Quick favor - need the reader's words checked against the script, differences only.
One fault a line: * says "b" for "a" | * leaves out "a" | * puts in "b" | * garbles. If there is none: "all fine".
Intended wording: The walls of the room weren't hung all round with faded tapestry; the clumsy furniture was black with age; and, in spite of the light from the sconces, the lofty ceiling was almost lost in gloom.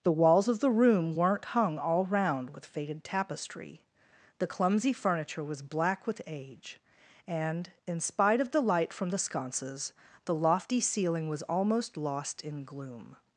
all fine